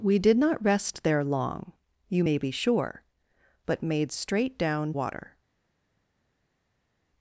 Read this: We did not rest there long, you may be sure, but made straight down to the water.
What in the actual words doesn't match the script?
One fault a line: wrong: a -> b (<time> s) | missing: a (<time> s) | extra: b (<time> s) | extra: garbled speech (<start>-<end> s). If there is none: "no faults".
missing: to the (4.9 s)